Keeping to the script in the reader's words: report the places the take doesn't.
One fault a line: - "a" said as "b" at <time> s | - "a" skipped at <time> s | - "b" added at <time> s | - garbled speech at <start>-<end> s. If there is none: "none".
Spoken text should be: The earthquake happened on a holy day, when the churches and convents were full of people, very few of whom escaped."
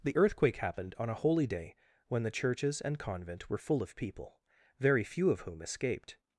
- "convents" said as "convent" at 3.0 s